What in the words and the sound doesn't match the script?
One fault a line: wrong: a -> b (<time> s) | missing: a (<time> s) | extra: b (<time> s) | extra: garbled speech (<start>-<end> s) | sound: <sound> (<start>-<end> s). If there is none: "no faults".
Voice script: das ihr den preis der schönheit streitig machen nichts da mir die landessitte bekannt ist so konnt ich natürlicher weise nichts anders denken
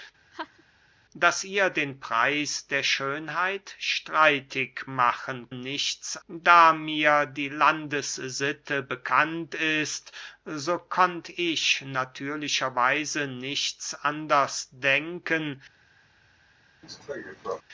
sound: laugh (0.3-0.6 s)
sound: cough (16.8-17.6 s)